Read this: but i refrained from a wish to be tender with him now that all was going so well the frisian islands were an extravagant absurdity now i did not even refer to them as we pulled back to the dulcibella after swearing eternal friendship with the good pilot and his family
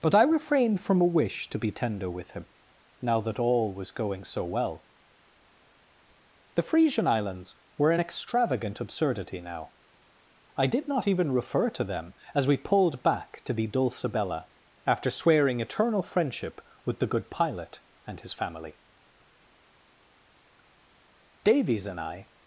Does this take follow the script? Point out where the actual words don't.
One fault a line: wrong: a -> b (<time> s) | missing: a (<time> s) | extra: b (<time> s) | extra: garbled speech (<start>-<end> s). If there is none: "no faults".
extra: davies and i (21.4 s)